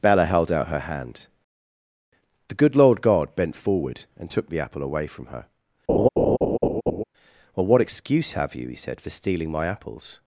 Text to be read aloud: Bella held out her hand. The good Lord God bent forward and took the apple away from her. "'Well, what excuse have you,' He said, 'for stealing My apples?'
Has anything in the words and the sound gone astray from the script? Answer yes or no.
yes